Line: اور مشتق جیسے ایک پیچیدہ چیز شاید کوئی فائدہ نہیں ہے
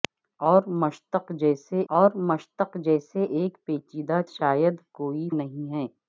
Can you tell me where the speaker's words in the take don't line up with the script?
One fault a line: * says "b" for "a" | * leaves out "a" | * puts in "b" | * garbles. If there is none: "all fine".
* puts in "اور مشتق جیسے"
* leaves out "چیز"
* leaves out "فائدہ"